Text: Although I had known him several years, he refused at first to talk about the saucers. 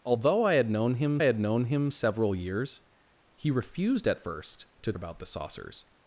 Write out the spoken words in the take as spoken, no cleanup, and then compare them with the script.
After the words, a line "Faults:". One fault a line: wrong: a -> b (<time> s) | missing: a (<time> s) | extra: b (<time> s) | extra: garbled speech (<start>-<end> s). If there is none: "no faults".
Although I had known him had known him several years, he refused at first to about the saucers.
Faults:
extra: had known him (1.2 s)
missing: talk (4.9 s)